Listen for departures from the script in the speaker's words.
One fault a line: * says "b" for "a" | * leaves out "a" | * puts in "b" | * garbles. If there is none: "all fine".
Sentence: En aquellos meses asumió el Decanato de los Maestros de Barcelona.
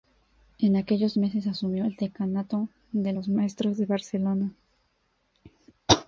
all fine